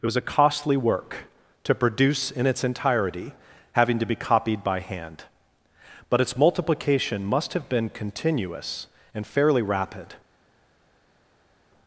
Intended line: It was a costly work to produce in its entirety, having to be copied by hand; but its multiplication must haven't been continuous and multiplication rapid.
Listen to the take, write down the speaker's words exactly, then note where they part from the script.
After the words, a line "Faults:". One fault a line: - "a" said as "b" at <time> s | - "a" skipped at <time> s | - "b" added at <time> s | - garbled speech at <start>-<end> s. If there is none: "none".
It was a costly work to produce in its entirety, having to be copied by hand; but its multiplication must have been continuous and fairly rapid.
Faults:
- "haven't" said as "have" at 7.5 s
- "multiplication" said as "fairly" at 9.3 s